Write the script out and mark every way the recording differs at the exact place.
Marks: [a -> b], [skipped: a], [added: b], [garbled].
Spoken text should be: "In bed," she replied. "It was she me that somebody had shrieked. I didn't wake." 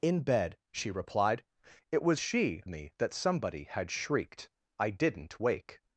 "In bed," she replied. "It was she me that somebody had shrieked. I didn't wake."